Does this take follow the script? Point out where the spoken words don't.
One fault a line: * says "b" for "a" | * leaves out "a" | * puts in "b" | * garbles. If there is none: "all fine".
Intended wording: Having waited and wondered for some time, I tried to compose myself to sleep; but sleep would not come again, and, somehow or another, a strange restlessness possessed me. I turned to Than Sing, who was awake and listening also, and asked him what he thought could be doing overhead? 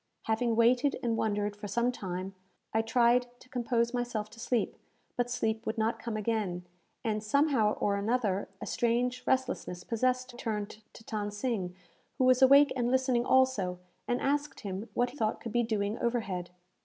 * leaves out "me I"
* leaves out "he"